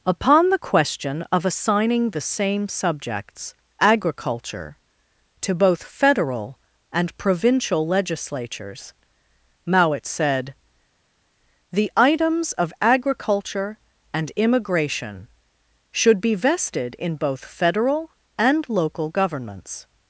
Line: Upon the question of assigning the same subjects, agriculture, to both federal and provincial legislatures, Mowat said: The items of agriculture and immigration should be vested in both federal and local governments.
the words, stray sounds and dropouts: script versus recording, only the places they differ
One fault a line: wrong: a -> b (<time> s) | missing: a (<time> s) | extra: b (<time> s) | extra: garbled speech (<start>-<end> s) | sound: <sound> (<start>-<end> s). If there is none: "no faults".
no faults